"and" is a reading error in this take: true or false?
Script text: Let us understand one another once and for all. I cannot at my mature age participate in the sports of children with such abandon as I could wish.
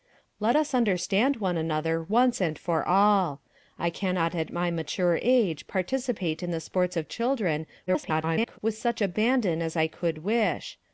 false